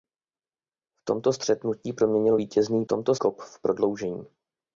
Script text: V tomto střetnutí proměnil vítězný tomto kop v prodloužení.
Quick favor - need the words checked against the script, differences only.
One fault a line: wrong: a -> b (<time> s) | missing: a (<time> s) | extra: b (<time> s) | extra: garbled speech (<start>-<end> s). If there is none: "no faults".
no faults